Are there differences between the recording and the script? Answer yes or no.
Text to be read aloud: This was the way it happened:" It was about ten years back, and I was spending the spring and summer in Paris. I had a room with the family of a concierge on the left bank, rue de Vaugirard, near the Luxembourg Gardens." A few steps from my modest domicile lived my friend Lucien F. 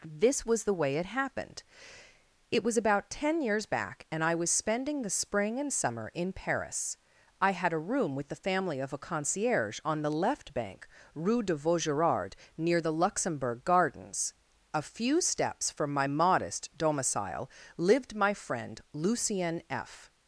no